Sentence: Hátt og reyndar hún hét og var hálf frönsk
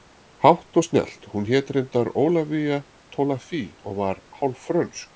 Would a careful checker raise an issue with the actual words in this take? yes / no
yes